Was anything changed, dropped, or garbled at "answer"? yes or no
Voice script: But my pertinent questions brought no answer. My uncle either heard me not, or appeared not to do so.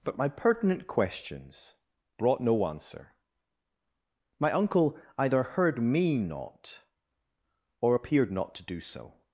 no